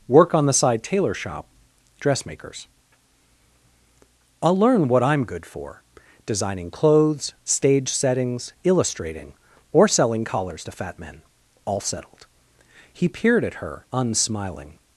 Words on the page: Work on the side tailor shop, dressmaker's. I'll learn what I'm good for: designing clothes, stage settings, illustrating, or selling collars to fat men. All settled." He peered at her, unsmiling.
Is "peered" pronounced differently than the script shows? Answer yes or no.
no